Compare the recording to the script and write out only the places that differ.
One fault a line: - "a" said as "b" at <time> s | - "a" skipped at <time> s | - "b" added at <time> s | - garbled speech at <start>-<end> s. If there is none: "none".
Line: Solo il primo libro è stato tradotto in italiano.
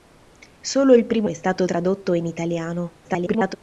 - "libro" skipped at 1.3 s
- garbled speech at 3.0-3.6 s